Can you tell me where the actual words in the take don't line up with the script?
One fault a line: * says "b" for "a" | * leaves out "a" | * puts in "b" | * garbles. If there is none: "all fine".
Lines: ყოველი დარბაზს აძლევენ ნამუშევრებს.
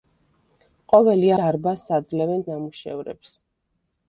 all fine